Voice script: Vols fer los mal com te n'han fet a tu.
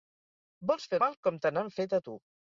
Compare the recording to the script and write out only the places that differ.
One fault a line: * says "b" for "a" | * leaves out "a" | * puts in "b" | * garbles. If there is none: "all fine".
* leaves out "los"